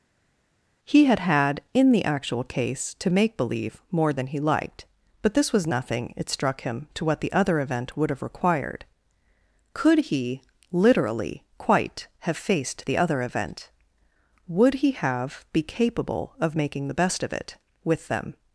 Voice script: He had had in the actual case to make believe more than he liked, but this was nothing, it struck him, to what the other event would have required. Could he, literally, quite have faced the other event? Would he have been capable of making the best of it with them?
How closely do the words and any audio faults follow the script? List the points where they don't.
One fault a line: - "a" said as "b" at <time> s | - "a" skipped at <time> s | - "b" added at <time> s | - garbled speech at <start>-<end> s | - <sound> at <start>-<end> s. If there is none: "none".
- "been" said as "be" at 15.5 s